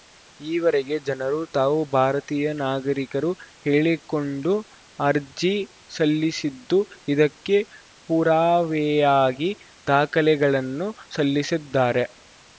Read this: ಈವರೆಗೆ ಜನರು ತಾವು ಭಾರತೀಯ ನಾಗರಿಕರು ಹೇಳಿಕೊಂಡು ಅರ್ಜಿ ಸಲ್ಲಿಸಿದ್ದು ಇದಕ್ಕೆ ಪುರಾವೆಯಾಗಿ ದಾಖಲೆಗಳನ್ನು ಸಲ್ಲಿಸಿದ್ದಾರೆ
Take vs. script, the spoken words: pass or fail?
pass